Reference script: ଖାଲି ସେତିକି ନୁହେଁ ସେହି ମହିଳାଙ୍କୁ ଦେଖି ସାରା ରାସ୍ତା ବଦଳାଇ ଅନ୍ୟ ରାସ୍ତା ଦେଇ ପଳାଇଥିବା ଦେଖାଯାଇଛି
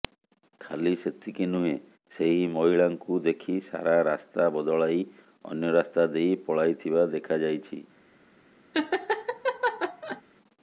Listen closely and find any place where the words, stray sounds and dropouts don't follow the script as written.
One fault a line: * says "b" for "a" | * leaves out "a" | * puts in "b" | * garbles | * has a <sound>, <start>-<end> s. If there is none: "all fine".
* has a laugh, 8.7-10.2 s